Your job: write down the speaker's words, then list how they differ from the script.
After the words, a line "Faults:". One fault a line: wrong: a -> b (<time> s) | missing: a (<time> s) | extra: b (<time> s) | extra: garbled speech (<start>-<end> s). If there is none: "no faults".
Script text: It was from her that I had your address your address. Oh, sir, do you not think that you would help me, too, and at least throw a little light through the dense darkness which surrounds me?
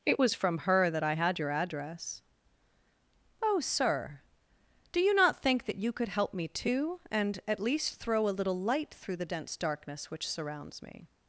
It was from her that I had your address. Oh, sir, do you not think that you could help me, too, and at least throw a little light through the dense darkness which surrounds me?
Faults:
missing: your address (2.2 s)
wrong: would -> could (5.9 s)